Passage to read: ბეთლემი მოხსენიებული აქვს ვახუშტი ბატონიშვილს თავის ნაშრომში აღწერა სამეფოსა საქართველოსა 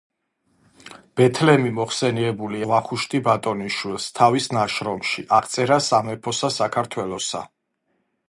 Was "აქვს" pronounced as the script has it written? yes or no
no